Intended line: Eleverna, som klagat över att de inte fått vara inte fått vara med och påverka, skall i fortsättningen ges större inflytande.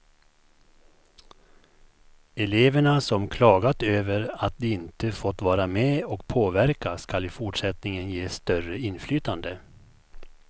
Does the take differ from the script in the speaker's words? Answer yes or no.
yes